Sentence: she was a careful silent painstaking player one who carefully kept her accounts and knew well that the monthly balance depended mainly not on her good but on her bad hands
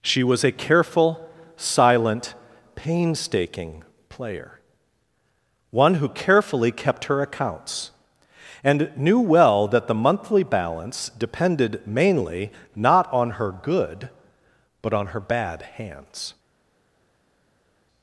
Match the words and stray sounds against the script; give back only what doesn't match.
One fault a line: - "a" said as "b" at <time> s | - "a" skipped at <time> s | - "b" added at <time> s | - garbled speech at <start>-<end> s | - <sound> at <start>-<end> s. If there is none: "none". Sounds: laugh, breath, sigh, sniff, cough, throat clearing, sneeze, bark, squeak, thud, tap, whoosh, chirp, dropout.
none